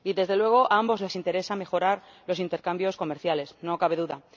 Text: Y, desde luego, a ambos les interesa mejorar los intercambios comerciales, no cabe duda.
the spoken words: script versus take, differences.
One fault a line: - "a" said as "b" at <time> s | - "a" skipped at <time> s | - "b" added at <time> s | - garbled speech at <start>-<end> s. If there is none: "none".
none